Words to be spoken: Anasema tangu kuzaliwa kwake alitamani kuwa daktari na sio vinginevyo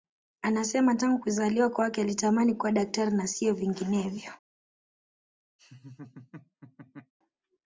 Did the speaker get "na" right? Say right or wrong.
right